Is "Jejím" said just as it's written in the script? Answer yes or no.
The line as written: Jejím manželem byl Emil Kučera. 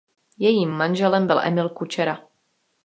yes